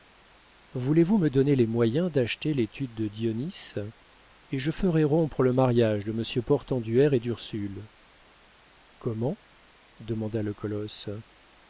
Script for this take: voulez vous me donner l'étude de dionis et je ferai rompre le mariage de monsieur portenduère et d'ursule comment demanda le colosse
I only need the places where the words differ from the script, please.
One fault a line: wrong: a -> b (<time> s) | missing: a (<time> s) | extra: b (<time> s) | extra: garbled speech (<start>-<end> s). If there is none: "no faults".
extra: les moyens d'acheter (1.6 s)